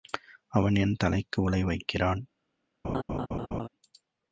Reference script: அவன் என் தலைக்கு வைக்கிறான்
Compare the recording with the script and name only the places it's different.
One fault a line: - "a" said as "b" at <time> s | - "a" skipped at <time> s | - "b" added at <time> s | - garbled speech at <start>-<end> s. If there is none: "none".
- "உலை" added at 1.4 s